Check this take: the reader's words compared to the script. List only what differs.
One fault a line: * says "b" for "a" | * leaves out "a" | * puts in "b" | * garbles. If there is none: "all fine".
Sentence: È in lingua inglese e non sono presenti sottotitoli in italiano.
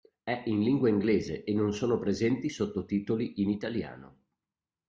all fine